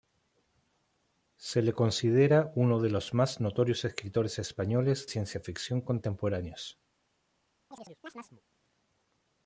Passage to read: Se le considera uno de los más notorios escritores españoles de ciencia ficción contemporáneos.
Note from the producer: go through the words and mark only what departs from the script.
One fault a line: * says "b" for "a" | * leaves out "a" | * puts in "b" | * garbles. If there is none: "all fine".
* leaves out "de"